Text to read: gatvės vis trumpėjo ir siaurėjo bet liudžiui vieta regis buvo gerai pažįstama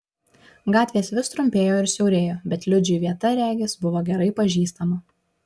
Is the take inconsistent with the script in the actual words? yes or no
no